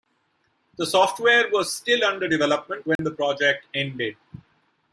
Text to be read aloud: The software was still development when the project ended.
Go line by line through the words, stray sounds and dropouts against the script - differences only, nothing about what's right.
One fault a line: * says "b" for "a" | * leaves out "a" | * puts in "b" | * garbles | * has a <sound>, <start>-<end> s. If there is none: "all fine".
* puts in "under"
* has a dropout, 3.0-3.0 s